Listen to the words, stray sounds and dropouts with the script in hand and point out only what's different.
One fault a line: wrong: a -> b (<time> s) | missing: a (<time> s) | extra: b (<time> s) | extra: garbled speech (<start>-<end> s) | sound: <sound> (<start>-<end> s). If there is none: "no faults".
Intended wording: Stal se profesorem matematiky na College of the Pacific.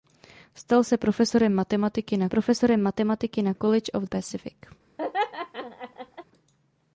extra: profesorem matematiky na (2.3 s)
missing: the (4.0 s)
sound: laugh (5.0-6.2 s)